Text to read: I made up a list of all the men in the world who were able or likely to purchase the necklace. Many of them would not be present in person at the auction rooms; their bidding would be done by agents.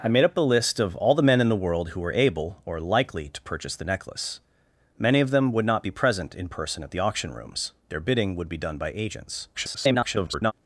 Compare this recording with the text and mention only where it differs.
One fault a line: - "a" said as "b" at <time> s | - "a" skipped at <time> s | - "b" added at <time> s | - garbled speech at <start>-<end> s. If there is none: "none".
- garbled speech at 9.5-10.5 s